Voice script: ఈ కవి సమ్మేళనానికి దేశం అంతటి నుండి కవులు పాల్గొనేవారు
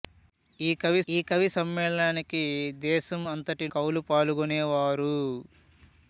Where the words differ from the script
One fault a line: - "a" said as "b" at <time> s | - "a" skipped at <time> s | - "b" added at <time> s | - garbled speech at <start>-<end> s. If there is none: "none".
- "ఈ కవి" added at 1.1 s
- "నుండి" skipped at 3.7 s